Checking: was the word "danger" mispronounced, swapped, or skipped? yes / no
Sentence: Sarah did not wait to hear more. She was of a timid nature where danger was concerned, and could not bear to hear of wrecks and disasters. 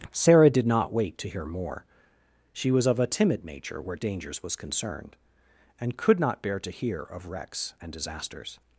yes